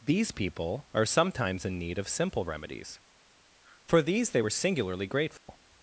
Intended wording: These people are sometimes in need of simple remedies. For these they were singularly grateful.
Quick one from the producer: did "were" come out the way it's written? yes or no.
yes